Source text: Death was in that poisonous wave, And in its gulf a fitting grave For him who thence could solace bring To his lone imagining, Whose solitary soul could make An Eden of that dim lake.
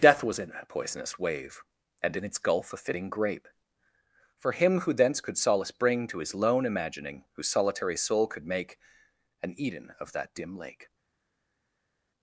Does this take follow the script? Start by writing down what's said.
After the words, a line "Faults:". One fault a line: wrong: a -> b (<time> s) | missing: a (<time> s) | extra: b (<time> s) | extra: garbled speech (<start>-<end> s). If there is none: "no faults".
Death was in that poisonous wave, And in its gulf a fitting grape For him who thence could solace bring To his lone imagining, Whose solitary soul could make An Eden of that dim lake.
Faults:
wrong: grave -> grape (3.1 s)